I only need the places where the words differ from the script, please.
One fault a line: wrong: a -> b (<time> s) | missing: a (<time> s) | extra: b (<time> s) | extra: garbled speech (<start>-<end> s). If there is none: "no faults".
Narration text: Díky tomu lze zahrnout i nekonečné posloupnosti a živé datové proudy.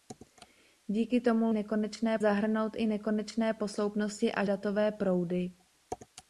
wrong: lze -> nekonečné (1.5 s)
missing: živé (4.5 s)